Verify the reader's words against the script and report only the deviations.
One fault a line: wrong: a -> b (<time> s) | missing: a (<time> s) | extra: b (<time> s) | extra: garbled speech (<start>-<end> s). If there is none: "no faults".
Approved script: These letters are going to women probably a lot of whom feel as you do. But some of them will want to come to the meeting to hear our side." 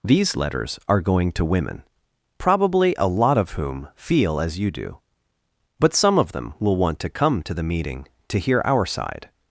no faults